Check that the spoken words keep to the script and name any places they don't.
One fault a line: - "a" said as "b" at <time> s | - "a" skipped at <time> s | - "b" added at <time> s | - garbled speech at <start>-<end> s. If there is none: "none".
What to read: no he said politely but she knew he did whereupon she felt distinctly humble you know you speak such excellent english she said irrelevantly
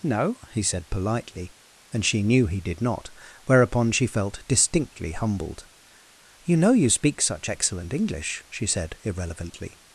- "but" said as "and" at 1.9 s
- "not" added at 2.8 s
- "humble" said as "humbled" at 5.1 s